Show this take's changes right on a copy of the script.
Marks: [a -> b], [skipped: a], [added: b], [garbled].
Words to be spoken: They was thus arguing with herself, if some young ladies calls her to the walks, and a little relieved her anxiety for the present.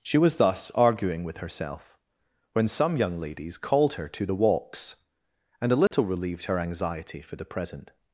[They -> She] was thus arguing with herself, [if -> when] some young ladies [calls -> called] her to the walks, and a little relieved her anxiety for the present.